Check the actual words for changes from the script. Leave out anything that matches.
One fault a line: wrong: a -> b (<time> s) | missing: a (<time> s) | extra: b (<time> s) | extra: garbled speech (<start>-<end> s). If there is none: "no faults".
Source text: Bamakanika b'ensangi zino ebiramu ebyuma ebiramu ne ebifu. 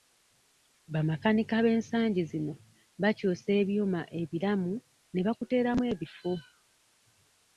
wrong: ebiramu -> bakyusa (3.0 s)
extra: bakuteeramu (5.3 s)